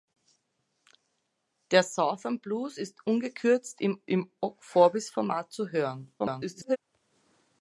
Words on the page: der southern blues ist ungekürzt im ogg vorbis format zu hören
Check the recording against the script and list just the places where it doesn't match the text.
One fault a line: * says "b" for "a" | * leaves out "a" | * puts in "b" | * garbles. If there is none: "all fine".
* puts in "im"
* garbles